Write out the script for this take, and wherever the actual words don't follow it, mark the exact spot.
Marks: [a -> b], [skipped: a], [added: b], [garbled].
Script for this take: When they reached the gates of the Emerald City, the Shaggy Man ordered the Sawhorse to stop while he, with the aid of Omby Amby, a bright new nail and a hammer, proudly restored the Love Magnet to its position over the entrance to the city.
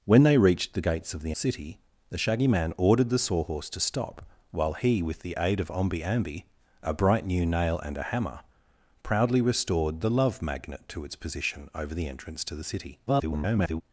When they reached the gates of the [skipped: Emerald] City, the Shaggy Man ordered the Sawhorse to stop while he, with the aid of Omby Amby, a bright new nail and a hammer, proudly restored the Love Magnet to its position over the entrance to the city. [garbled]